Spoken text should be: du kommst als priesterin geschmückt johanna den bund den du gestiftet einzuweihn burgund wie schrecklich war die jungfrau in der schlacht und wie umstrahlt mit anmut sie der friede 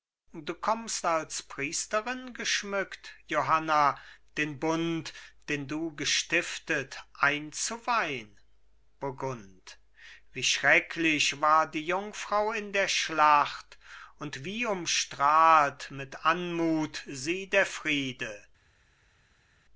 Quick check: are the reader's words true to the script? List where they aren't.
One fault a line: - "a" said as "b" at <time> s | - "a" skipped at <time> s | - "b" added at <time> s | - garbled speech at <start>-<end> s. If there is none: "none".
none